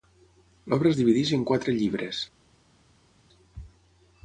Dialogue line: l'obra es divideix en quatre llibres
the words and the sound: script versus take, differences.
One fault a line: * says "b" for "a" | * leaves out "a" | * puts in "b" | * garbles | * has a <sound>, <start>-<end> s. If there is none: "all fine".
all fine